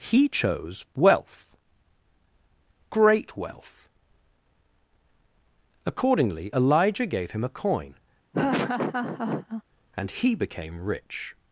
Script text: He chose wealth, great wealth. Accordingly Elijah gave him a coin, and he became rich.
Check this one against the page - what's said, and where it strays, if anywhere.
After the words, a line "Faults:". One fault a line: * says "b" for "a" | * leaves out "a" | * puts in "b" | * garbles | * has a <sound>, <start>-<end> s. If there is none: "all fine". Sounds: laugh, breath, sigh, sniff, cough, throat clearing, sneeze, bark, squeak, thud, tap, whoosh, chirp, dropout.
He chose wealth, great wealth. Accordingly Elijah gave him a coin, and he became rich.
Faults:
* has a laugh, 8.3-9.6 s